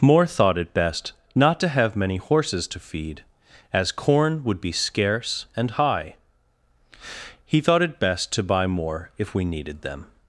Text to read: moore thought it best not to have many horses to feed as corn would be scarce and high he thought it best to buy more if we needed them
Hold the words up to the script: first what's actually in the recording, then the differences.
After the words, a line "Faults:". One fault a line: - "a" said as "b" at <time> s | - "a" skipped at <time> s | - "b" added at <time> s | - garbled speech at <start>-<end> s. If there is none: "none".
moore thought it best not to have many horses to feed as corn would be scarce and high he thought it best to buy more if we needed them
Faults:
none